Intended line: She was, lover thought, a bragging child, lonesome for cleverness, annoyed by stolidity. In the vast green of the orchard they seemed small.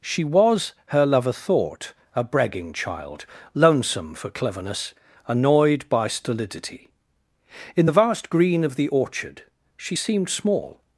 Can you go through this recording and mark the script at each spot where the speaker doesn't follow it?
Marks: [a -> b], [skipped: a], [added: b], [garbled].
She was, [added: her] lover thought, a bragging child, lonesome for cleverness, annoyed by stolidity. In the vast green of the orchard [they -> she] seemed small.